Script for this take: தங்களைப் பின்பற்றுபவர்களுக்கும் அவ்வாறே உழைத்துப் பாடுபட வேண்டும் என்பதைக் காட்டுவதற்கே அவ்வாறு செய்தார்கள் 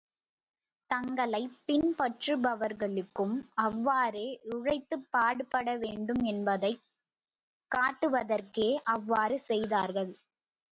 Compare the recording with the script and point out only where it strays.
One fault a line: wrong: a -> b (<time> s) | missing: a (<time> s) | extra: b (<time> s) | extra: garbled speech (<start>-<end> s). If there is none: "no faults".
no faults